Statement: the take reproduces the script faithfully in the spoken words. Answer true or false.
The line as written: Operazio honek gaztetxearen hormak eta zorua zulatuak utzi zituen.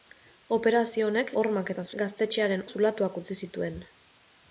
false